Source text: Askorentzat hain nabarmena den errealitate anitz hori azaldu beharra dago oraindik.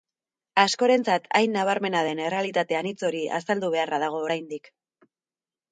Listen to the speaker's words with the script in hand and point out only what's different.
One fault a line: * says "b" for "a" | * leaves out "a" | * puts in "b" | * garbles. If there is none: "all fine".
all fine